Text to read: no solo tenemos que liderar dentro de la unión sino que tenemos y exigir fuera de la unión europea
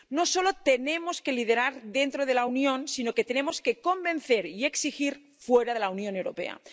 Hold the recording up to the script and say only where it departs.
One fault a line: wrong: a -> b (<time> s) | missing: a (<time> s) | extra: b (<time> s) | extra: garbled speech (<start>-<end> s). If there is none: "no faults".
extra: que convencer (3.6 s)